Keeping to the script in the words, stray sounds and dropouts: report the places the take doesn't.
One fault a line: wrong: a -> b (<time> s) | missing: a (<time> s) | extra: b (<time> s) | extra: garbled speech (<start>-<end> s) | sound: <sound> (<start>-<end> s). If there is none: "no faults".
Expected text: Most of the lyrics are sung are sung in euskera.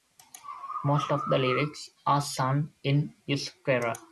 missing: are sung (2.7 s)